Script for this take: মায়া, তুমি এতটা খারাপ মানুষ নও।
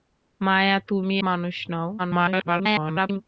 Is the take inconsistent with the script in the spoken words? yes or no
yes